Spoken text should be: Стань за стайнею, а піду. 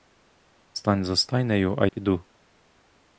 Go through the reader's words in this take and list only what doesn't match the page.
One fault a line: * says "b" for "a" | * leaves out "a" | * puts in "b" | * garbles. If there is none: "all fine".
all fine